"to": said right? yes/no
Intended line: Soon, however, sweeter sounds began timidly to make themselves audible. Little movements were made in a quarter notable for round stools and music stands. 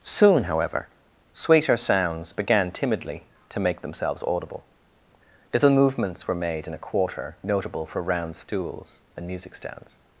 yes